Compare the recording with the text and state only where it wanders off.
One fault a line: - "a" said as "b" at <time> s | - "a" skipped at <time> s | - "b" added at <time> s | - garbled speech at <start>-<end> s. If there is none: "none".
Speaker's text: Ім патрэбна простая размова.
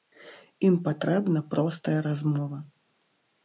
none